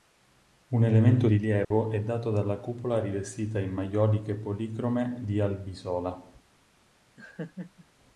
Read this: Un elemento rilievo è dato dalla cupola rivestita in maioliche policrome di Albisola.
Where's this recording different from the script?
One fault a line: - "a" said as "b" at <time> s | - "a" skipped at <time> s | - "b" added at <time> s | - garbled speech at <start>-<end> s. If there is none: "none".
none